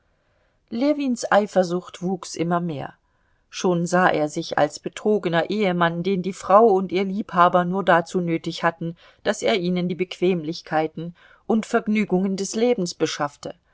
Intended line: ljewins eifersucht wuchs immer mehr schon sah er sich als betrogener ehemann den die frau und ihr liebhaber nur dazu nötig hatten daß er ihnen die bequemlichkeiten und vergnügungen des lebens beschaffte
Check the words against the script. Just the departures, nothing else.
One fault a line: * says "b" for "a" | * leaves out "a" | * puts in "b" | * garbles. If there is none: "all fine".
all fine